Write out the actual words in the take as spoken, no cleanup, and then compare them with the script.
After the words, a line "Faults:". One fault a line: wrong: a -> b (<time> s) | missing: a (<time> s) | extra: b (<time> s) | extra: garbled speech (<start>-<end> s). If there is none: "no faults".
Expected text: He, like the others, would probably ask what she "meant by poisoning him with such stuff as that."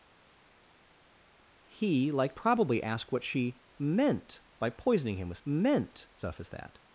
He, like probably ask what she "meant by poisoning him with meant stuff as that."
Faults:
missing: the others would (2.3 s)
wrong: such -> meant (5.5 s)